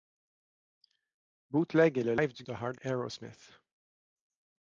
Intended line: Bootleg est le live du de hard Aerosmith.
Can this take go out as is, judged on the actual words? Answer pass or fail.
pass